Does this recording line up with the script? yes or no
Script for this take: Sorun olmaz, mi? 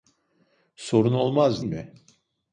yes